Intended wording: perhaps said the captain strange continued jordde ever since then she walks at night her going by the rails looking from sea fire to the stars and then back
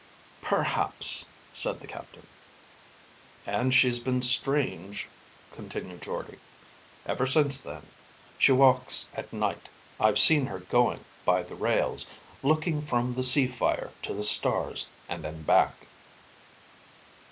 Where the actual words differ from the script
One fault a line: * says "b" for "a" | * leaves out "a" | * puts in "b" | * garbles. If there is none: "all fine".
* puts in "and she's been"
* puts in "i've seen"
* puts in "the"